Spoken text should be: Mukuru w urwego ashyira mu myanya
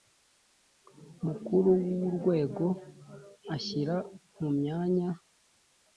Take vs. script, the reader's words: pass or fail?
pass